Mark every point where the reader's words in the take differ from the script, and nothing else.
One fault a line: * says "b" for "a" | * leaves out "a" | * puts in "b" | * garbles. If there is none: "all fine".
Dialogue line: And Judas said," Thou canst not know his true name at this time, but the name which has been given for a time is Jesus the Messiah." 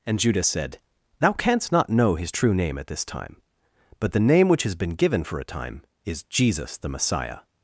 all fine